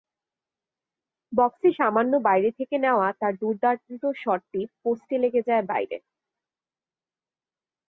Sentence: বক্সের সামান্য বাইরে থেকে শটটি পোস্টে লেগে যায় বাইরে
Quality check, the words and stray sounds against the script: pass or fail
fail